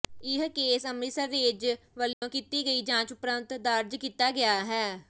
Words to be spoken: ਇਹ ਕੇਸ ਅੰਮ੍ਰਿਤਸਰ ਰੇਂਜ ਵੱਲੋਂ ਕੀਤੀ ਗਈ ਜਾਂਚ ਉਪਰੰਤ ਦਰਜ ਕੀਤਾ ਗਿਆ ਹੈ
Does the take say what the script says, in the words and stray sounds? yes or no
no